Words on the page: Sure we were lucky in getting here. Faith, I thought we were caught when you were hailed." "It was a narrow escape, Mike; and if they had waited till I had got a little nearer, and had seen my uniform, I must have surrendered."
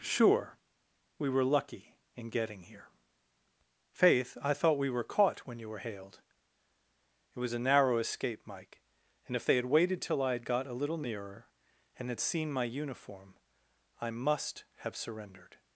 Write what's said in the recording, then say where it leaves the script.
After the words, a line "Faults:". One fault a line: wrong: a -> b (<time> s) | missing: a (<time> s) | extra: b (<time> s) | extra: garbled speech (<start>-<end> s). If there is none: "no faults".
Sure we were lucky in getting here. Faith, I thought we were caught when you were hailed." "It was a narrow escape, Mike; and if they had waited till I had got a little nearer, and had seen my uniform, I must have surrendered."
Faults:
no faults